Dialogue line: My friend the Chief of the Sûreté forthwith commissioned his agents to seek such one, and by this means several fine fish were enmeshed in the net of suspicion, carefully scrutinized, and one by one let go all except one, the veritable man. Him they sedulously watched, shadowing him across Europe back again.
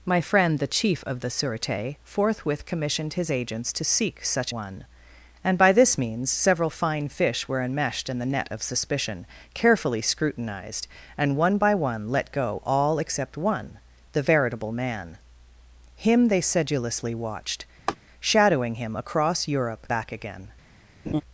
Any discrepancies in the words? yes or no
no